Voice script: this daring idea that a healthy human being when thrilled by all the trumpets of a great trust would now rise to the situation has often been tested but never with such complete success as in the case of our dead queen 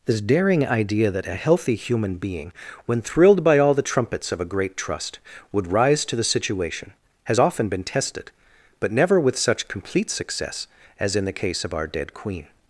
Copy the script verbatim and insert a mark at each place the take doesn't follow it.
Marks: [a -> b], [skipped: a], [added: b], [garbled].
this daring idea that a healthy human being when thrilled by all the trumpets of a great trust would [skipped: now] rise to the situation has often been tested but never with such complete success as in the case of our dead queen